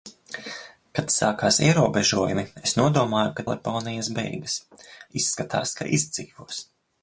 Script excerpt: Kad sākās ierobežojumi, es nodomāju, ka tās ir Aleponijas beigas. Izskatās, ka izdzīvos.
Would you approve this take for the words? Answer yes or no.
no